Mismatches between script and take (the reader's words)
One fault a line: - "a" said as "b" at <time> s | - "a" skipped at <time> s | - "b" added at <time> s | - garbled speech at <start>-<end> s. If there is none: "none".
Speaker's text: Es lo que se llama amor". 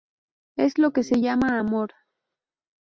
none